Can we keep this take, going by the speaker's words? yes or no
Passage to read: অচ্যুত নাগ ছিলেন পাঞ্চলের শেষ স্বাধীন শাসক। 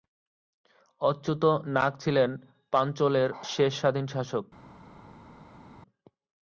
yes